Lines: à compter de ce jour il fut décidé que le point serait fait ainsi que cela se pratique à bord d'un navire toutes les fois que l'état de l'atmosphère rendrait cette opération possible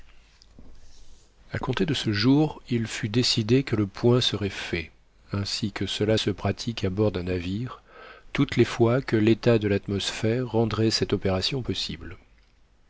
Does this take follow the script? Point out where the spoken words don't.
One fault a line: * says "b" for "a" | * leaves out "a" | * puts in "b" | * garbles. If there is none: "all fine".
all fine